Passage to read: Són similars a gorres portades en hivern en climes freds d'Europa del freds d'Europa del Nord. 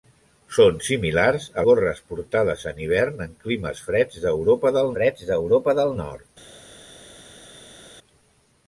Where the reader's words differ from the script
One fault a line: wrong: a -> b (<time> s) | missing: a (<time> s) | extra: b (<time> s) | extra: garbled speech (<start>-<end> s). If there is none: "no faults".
no faults